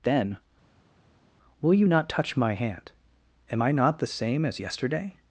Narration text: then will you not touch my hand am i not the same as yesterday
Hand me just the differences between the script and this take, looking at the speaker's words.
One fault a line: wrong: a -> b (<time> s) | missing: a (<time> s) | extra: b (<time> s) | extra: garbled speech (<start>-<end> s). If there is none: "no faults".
no faults